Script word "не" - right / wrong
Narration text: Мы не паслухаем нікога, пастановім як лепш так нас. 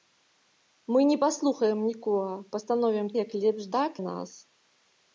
right